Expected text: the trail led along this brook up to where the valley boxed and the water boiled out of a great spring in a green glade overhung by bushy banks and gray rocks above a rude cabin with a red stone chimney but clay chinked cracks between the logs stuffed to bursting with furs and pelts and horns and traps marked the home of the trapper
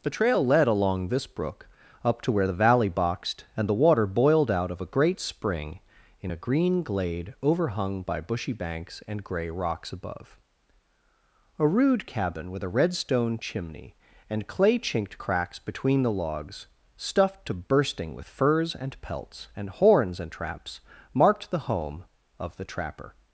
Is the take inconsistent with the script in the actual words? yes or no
yes